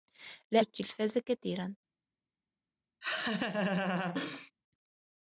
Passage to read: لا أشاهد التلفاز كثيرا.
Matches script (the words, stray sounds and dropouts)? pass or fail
fail